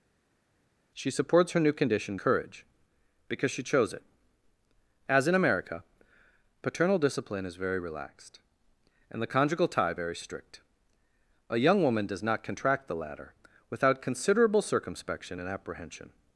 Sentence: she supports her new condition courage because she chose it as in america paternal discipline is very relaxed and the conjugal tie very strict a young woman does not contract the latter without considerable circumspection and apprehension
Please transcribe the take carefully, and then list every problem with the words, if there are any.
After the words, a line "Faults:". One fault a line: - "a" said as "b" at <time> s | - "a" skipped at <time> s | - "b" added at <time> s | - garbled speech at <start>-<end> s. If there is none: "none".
she supports her new condition courage because she chose it as in america paternal discipline is very relaxed and the conjugal tie very strict a young woman does not contract the latter without considerable circumspection and apprehension
Faults:
none